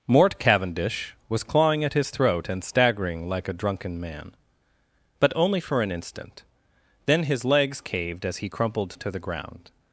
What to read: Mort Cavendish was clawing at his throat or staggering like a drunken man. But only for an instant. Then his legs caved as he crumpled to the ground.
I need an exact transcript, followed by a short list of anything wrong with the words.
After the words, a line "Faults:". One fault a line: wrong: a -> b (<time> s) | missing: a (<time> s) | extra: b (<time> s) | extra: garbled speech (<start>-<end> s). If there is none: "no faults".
Mort Cavendish was clawing at his throat and staggering like a drunken man. But only for an instant. Then his legs caved as he crumpled to the ground.
Faults:
wrong: or -> and (2.5 s)